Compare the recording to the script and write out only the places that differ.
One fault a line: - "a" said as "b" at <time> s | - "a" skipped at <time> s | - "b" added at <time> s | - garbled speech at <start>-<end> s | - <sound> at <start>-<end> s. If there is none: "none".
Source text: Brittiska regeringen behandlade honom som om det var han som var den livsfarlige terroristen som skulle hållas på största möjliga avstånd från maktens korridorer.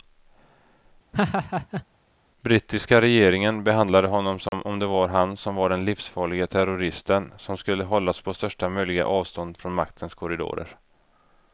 - laugh at 1.1-1.9 s
- dropout at 4.5-4.5 s